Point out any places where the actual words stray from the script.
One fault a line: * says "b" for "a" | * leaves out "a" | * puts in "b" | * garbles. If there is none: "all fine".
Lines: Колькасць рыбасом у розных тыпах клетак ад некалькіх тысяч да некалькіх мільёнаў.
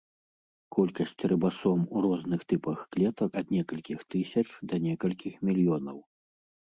all fine